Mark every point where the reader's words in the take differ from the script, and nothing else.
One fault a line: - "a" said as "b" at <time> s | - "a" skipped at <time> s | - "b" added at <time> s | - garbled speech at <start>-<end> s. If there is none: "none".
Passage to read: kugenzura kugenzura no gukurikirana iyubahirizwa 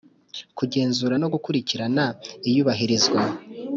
- "kugenzura" skipped at 1.1 s